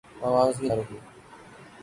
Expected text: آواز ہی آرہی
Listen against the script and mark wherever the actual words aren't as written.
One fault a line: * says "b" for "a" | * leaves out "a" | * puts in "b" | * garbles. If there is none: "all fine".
all fine